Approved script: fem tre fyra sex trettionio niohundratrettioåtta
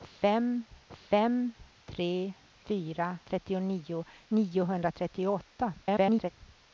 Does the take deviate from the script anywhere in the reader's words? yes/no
yes